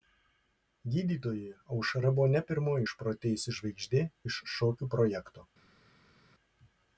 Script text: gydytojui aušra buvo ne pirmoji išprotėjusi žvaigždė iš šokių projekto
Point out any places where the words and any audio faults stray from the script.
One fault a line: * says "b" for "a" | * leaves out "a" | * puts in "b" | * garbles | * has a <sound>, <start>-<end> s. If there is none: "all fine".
all fine